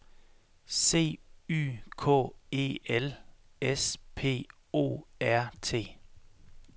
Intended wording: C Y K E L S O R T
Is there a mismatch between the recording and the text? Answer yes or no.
yes